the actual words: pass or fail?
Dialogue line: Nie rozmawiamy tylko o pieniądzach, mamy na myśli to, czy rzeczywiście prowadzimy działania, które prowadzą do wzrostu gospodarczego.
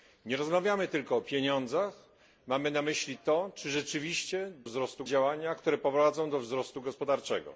fail